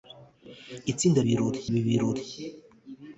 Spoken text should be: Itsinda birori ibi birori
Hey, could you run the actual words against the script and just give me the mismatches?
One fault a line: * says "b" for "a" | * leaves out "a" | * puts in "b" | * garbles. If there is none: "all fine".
all fine